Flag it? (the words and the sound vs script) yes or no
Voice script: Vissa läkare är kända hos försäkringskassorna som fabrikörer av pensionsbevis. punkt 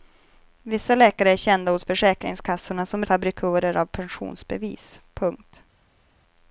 no